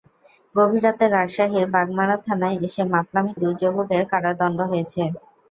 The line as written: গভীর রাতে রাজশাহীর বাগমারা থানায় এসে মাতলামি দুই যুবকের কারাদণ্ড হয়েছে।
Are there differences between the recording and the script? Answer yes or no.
no